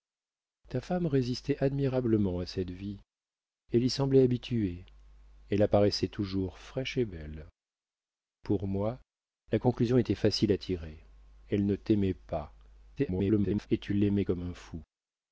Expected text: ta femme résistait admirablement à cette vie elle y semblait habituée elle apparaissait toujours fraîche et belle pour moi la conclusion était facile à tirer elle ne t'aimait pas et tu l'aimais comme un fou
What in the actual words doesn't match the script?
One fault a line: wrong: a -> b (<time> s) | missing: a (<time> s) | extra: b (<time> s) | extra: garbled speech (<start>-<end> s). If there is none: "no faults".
extra: garbled speech (13.0-13.7 s)